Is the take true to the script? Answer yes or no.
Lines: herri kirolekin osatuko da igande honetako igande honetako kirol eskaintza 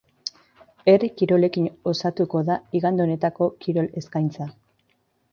no